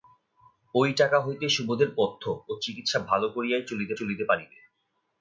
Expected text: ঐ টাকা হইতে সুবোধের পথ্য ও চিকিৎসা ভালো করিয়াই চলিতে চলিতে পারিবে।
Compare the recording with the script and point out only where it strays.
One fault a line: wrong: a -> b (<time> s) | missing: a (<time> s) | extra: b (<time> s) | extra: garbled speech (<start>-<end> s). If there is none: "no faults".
no faults